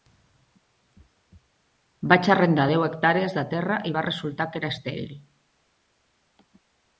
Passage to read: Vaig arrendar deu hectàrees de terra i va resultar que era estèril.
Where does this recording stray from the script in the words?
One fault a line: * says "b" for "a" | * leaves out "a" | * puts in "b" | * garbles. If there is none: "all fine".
all fine